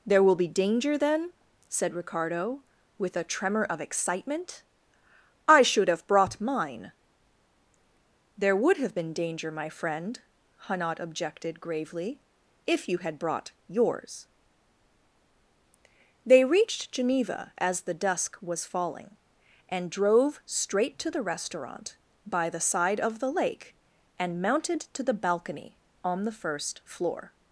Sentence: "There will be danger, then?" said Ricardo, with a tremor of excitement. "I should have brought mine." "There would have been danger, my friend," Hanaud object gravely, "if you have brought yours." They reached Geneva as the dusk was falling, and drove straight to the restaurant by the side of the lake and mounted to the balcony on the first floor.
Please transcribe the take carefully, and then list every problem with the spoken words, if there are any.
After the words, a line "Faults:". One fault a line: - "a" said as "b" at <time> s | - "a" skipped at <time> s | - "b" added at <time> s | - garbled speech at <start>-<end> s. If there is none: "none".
"There will be danger, then?" said Ricardo, with a tremor of excitement. "I should have brought mine." "There would have been danger, my friend," Hanaud objected gravely, "if you had brought yours." They reached Geneva as the dusk was falling, and drove straight to the restaurant by the side of the lake and mounted to the balcony on the first floor.
Faults:
- "object" said as "objected" at 11.0 s
- "have" said as "had" at 13.0 s